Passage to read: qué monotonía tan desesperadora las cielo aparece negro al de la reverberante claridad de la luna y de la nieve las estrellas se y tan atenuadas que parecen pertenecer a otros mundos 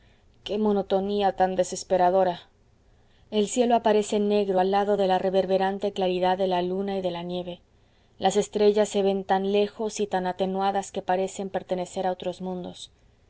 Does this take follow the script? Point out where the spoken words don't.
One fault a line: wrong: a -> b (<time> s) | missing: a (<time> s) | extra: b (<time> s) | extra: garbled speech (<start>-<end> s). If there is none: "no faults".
wrong: las -> el (3.3 s)
extra: lado (4.7 s)
extra: ven tan lejos (9.0 s)